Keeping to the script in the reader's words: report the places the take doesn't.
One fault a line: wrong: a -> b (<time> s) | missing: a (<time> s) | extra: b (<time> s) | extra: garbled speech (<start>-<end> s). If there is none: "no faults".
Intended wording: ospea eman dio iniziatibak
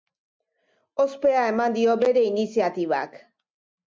extra: bere (2.0 s)